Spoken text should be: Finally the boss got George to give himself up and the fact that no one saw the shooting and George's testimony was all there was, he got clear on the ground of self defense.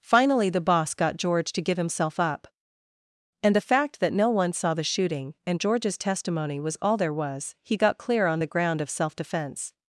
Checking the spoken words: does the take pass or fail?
pass